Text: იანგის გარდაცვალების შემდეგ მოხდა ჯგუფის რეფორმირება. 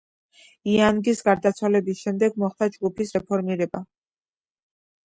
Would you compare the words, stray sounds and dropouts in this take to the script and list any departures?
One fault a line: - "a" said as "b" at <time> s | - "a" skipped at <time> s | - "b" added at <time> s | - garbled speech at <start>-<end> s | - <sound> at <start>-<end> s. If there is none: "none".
none